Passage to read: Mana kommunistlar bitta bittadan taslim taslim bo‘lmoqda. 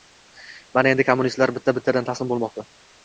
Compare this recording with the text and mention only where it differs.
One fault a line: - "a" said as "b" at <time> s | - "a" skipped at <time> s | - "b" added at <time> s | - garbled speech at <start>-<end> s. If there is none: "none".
- "endi" added at 0.9 s
- "taslim" skipped at 2.3 s